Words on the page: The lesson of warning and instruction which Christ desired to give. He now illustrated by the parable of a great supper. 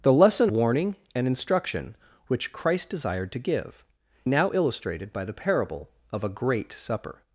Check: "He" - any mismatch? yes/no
yes